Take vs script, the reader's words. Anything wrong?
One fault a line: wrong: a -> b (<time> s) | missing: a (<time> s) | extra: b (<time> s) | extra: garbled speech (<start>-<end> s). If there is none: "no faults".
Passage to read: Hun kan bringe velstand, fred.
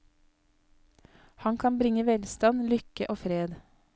wrong: Hun -> Han (1.4 s)
extra: lykke og (2.7 s)